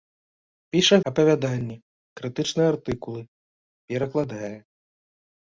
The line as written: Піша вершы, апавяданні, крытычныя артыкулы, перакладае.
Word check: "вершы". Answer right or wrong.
wrong